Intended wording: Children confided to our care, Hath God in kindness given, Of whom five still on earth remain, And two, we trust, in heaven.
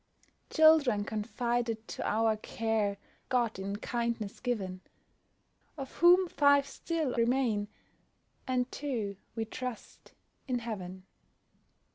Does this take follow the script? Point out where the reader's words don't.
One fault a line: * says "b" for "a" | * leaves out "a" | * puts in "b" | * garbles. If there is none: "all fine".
* leaves out "Hath"
* leaves out "on earth"